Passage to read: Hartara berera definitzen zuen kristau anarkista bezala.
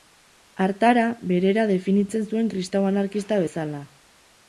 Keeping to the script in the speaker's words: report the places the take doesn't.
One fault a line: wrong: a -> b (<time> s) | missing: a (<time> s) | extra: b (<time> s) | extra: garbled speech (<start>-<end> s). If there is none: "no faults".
no faults